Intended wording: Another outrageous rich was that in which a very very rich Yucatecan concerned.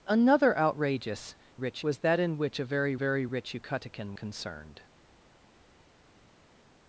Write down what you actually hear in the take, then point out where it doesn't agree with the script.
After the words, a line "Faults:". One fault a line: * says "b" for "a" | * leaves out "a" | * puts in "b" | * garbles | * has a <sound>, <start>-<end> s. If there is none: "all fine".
Another outrageous rich was that in which a very very rich Yucatecan concerned.
Faults:
all fine